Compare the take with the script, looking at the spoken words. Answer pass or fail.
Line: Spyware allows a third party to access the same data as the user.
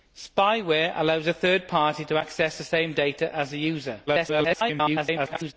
fail